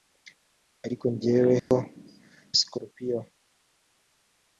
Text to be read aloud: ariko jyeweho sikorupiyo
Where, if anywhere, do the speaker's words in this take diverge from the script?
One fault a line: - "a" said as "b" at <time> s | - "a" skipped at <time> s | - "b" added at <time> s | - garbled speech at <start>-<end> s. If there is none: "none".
none